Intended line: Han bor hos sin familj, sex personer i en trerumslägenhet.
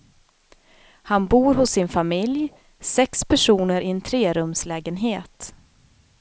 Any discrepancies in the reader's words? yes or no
no